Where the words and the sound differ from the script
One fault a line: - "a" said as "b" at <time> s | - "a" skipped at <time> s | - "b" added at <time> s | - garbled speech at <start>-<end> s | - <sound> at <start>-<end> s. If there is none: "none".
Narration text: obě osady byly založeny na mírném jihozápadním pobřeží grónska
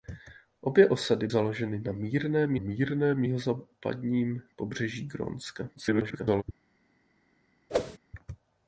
- "byly" skipped at 1.3 s
- "mírném" added at 2.6 s
- garbled speech at 5.8-6.4 s
- whoosh at 7.7-8.0 s